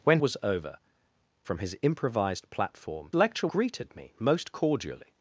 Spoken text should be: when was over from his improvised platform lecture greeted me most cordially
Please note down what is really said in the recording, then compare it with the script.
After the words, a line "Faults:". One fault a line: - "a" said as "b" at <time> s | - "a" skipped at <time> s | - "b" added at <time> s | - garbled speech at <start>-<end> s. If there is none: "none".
when was over from his improvised platform lecture greeted me most cordially
Faults:
none